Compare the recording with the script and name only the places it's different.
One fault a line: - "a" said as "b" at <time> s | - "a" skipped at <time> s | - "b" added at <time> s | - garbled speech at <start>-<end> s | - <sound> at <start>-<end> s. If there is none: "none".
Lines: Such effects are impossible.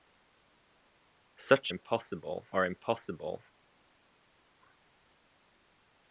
- "effects" said as "impossible" at 1.7 s